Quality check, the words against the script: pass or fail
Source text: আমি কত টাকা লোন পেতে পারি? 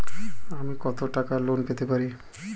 pass